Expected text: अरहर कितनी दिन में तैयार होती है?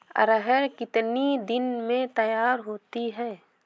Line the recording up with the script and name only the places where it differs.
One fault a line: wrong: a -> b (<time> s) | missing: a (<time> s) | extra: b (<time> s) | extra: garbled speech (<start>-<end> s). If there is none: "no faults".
no faults